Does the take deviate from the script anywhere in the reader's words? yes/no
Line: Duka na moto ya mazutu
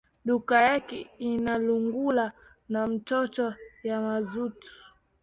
yes